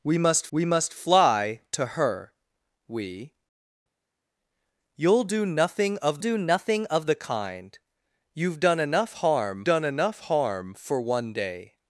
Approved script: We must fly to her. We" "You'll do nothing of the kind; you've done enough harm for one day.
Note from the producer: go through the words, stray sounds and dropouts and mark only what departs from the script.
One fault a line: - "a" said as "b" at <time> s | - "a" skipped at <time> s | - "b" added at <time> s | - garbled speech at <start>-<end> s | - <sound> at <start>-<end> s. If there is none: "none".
- "we must" added at 0.5 s
- "do nothing of" added at 6.2 s
- "done enough harm" added at 9.6 s